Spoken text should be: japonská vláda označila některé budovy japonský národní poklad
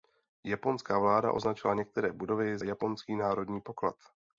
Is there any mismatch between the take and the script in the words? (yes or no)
no